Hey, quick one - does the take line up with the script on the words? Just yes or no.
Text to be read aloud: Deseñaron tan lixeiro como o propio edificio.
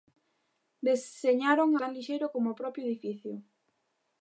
yes